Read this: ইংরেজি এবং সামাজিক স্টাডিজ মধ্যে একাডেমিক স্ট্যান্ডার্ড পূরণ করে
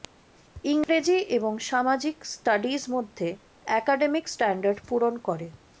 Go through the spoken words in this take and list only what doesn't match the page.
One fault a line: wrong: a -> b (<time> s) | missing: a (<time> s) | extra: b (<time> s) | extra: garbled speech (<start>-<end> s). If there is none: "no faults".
no faults